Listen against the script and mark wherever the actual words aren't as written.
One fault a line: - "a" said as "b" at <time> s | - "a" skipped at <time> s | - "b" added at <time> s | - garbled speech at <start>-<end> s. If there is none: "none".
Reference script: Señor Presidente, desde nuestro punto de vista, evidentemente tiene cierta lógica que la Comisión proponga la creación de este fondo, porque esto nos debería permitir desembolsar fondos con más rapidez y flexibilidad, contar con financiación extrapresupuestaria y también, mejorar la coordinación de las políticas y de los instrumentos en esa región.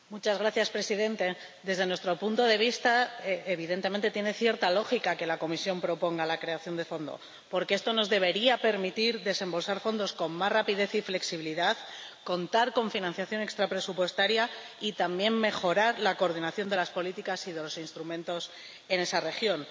- "este" skipped at 6.8 s